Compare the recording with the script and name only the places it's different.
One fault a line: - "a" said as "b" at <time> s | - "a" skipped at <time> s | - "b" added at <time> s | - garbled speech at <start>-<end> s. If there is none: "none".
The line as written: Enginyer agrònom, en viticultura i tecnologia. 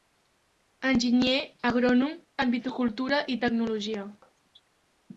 none